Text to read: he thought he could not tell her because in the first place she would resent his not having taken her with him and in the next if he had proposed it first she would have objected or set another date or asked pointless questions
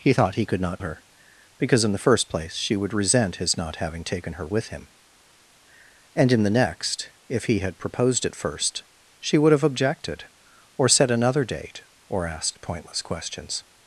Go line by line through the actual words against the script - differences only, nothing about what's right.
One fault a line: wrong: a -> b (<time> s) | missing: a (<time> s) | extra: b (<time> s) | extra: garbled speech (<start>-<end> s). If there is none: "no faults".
missing: tell (0.8 s)